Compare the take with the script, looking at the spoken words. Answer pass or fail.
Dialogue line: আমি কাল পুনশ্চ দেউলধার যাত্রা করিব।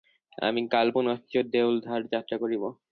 pass